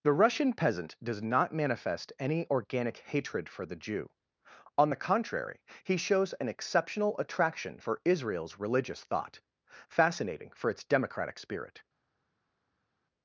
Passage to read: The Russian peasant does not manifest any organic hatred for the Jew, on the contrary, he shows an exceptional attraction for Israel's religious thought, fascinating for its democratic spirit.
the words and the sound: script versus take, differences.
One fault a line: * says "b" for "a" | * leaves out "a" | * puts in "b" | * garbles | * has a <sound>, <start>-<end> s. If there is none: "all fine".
all fine